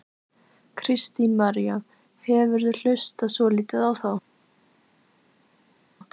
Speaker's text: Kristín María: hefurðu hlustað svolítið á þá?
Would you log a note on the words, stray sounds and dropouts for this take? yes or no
no